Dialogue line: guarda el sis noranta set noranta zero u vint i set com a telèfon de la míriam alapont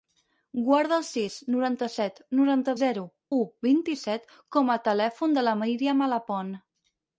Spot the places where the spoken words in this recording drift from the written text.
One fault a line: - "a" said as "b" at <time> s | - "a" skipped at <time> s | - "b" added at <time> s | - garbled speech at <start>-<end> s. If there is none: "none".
none